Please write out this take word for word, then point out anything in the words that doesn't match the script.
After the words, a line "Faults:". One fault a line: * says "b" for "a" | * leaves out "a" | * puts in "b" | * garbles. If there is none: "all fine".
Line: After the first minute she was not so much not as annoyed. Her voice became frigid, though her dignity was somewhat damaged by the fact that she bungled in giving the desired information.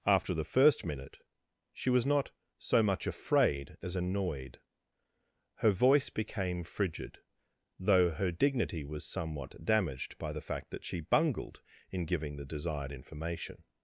After the first minute she was not so much afraid as annoyed. Her voice became frigid, though her dignity was somewhat damaged by the fact that she bungled in giving the desired information.
Faults:
* says "afraid" for "not"